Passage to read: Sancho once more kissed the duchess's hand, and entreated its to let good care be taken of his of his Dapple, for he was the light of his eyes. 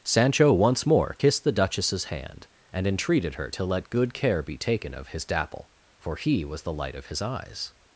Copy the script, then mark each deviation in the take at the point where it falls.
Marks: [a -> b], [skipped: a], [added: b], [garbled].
Sancho once more kissed the duchess's hand, and entreated [its -> her] to let good care be taken of his [skipped: of his] Dapple, for he was the light of his eyes.